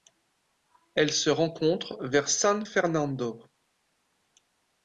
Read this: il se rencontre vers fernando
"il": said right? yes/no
no